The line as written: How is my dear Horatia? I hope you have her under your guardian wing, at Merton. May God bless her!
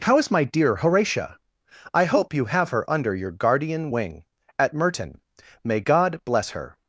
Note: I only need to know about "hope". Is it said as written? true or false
true